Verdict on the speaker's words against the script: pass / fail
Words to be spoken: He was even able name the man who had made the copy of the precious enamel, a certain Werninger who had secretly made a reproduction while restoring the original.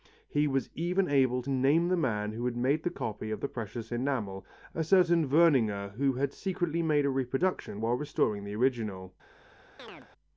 pass